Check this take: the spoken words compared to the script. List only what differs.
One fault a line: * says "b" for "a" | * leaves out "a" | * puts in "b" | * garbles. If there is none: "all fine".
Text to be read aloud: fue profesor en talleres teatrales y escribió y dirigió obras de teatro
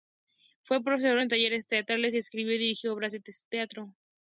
all fine